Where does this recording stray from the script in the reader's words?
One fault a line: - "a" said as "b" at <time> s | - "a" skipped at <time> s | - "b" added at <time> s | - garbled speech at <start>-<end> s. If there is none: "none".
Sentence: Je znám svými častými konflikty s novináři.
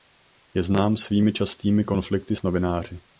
none